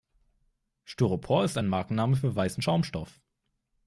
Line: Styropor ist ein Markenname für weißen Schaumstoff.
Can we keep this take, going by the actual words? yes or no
yes